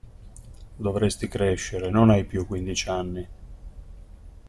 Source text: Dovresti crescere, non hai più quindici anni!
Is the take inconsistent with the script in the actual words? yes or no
no